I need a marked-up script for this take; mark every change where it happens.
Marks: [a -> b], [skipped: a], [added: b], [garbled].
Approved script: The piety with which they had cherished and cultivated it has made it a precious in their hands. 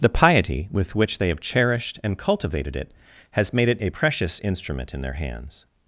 The piety with which they [had -> have] cherished and cultivated it has made it a precious [added: instrument] in their hands.